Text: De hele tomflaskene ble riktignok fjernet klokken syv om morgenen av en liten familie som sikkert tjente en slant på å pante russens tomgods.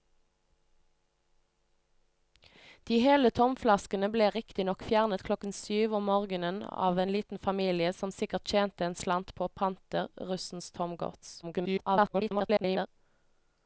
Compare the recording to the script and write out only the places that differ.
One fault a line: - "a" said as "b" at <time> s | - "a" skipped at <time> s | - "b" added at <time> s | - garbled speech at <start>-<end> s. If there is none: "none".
- garbled speech at 11.4-12.9 s